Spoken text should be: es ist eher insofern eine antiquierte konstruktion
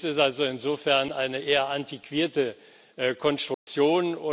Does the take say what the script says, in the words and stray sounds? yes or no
no